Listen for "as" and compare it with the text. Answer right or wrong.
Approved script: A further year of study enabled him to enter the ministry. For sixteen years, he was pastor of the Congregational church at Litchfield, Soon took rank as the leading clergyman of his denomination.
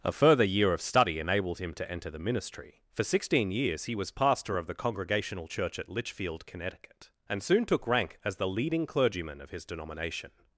right